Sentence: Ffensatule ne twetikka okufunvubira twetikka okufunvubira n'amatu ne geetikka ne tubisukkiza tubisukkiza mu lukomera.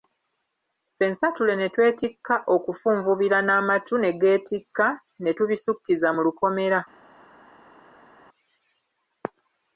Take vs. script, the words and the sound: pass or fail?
fail